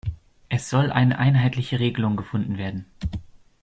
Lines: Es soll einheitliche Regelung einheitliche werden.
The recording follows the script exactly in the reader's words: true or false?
false